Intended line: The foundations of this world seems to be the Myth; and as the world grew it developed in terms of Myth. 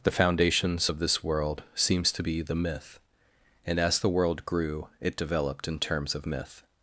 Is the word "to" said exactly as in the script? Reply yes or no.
yes